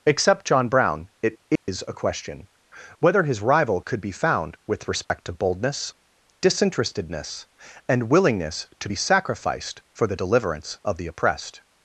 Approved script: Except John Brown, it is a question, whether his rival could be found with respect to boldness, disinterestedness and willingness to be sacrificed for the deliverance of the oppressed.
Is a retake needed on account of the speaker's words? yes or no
no